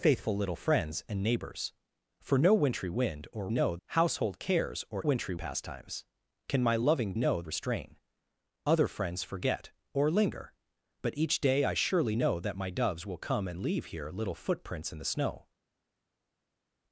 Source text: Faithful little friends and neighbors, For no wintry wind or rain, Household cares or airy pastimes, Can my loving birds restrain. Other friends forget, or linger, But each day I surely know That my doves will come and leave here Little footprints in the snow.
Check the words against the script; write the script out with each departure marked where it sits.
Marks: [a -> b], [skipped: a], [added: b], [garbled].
Faithful little friends and neighbors, For no wintry wind or [rain, -> know] Household cares or [airy -> wintry] pastimes, Can my loving [birds -> know] restrain. Other friends forget, or linger, But each day I surely know That my doves will come and leave here Little footprints in the snow.